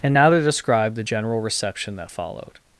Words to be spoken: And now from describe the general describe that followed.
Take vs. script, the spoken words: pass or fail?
fail